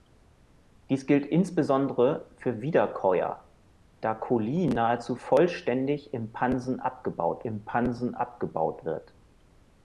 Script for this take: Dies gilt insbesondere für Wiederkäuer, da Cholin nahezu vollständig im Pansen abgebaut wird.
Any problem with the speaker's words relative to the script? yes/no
yes